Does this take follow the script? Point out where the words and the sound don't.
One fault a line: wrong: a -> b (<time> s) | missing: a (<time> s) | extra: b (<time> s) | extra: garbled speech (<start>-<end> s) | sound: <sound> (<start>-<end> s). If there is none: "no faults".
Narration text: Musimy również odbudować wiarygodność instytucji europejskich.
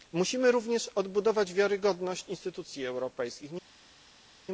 no faults